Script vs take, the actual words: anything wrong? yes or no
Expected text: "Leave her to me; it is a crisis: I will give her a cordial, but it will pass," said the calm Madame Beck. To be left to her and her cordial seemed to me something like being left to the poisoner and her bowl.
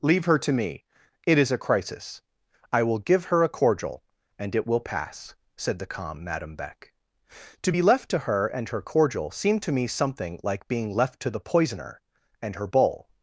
yes